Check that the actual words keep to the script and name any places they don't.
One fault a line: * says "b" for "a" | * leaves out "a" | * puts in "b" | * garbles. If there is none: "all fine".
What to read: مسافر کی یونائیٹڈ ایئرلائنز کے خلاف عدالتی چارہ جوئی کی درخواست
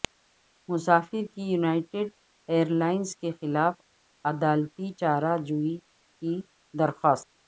all fine